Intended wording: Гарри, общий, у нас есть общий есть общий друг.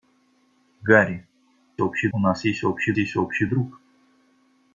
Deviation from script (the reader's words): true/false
false